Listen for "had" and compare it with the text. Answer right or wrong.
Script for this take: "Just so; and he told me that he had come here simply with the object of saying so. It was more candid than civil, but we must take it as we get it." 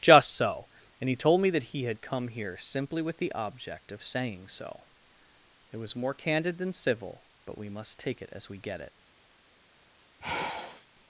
right